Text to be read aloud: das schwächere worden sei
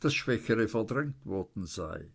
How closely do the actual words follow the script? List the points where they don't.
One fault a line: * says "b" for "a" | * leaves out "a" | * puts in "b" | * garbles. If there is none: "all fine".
* puts in "verdrängt"